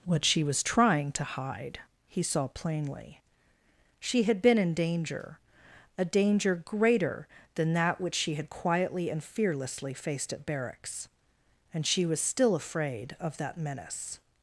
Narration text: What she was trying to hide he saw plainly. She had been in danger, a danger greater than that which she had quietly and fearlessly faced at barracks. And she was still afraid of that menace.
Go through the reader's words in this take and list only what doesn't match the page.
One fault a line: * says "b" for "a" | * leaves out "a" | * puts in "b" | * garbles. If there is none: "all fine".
all fine